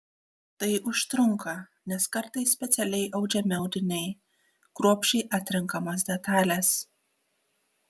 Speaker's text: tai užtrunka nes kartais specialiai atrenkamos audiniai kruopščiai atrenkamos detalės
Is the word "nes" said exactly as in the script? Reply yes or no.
yes